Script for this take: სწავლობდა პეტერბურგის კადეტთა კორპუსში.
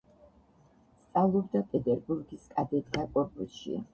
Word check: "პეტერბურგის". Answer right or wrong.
right